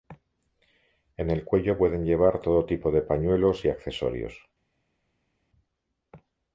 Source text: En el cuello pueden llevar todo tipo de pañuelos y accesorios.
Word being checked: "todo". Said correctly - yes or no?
yes